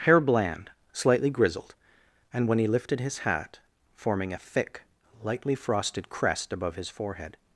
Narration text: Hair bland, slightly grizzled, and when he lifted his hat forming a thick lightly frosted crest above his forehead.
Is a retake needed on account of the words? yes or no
no